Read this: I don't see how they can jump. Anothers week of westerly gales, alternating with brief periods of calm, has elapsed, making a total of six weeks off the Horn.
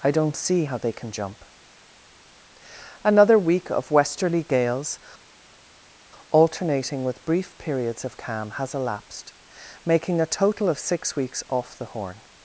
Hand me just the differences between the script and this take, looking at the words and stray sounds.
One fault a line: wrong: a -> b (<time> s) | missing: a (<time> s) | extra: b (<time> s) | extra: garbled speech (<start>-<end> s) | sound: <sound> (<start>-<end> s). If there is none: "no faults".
wrong: Anothers -> Another (3.0 s)